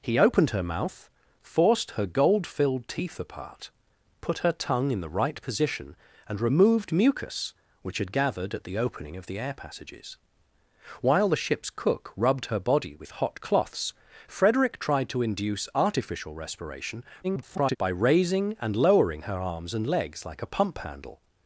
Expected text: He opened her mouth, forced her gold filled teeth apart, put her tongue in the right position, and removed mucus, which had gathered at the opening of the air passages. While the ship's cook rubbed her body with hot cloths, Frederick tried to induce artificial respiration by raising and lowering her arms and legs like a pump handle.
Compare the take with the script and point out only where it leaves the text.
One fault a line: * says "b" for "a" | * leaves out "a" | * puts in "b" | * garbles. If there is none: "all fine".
* garbles